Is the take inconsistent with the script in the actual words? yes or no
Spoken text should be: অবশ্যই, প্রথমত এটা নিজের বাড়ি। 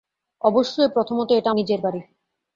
no